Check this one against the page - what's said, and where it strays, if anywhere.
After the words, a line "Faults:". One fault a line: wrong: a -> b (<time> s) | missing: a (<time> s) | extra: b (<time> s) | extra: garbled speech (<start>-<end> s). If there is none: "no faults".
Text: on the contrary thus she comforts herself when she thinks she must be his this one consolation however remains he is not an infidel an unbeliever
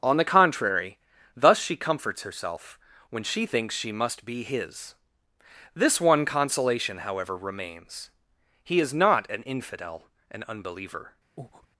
on the contrary thus she comforts herself when she thinks she must be his this one consolation however remains he is not an infidel an unbeliever
Faults:
no faults